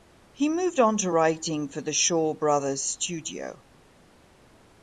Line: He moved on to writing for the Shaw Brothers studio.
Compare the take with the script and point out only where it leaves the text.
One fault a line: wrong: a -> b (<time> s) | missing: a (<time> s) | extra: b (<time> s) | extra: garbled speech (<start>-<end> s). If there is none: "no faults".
no faults